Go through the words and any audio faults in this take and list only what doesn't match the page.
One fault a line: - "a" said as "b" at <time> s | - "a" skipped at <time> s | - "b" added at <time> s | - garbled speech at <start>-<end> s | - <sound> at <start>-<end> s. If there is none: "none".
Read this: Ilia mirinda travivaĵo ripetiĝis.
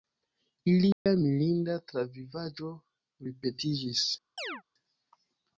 - dropout at 0.9-1.1 s
- chirp at 4.4-4.6 s